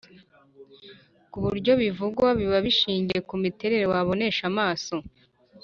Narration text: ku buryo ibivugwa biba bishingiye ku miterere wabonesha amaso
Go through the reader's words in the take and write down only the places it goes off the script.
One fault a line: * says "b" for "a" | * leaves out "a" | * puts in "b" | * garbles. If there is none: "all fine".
all fine